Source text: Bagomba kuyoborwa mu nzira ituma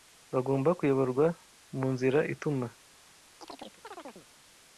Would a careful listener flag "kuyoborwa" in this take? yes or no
no